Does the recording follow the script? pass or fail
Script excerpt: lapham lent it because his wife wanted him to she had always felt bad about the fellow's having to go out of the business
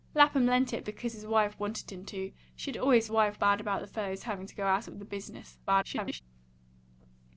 fail